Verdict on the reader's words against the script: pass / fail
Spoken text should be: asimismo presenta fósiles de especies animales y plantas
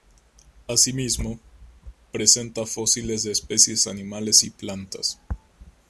pass